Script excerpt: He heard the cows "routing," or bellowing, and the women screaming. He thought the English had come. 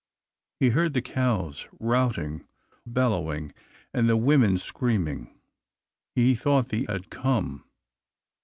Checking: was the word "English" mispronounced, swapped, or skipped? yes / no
yes